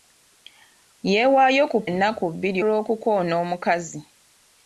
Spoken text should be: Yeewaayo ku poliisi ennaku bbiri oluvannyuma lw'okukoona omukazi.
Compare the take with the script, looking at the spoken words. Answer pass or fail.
fail